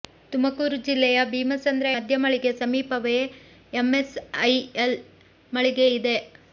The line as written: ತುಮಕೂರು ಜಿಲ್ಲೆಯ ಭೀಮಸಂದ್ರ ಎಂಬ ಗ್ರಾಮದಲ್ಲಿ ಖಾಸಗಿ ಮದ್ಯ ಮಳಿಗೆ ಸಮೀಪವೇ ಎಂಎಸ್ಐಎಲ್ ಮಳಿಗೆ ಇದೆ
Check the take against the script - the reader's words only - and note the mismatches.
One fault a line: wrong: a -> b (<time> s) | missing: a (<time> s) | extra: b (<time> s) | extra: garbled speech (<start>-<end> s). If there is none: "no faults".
missing: ಎಂಬ ಗ್ರಾಮದಲ್ಲಿ ಖಾಸಗಿ (1.9 s)